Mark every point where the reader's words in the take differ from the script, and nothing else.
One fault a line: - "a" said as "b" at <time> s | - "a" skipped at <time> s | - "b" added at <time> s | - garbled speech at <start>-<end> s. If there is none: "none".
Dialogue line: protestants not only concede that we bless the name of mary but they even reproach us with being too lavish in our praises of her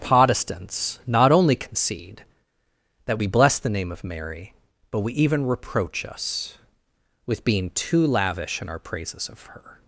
- "they" said as "we" at 5.0 s